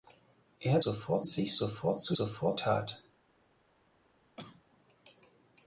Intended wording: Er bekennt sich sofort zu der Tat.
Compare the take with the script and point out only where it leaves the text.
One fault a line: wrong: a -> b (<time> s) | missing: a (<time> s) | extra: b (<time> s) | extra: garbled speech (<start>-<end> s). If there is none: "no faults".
wrong: bekennt -> sofort (0.8 s)
wrong: der -> sofort (2.1 s)